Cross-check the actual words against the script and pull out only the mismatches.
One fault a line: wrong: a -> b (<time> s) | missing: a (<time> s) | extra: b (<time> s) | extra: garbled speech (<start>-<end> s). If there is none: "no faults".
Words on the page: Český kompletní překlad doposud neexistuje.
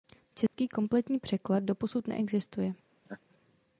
no faults